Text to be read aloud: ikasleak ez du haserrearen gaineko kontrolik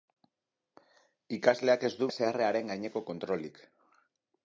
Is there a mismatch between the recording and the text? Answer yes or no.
no